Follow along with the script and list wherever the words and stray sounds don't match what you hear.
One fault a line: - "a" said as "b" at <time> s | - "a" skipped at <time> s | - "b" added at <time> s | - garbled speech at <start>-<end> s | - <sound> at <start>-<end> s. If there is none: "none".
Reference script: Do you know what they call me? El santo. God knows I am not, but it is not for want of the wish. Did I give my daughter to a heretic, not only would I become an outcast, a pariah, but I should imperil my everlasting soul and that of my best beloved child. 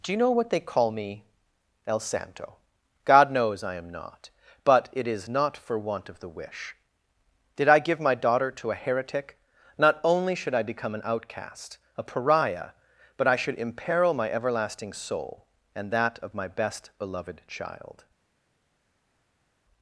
- "would" said as "should" at 10.3 s